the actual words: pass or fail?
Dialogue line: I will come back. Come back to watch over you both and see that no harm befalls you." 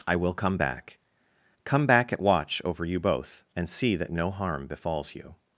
fail